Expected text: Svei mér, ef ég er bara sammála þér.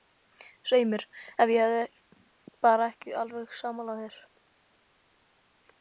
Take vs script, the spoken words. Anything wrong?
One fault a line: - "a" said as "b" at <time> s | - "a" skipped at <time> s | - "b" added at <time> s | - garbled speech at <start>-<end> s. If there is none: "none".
- "ekki alveg" added at 2.9 s